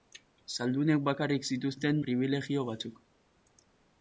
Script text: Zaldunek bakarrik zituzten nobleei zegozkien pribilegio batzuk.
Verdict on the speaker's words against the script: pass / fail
fail